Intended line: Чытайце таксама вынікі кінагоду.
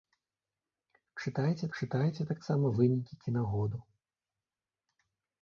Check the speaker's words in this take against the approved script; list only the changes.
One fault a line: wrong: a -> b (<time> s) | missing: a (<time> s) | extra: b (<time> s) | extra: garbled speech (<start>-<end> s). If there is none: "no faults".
extra: чытайце (1.8 s)